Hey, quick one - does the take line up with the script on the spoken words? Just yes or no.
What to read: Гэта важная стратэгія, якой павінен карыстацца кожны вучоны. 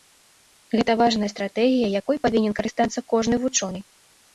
yes